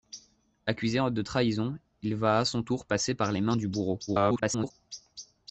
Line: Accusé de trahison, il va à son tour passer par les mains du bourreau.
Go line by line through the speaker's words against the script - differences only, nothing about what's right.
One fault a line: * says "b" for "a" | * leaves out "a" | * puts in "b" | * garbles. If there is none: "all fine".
* garbles